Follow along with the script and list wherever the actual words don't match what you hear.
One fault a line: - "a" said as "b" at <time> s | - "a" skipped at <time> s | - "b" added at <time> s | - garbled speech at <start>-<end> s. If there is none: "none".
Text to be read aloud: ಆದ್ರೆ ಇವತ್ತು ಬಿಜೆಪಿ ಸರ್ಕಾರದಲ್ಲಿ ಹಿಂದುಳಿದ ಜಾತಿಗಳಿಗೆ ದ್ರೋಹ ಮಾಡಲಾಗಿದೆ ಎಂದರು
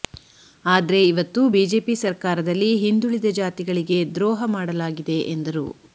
none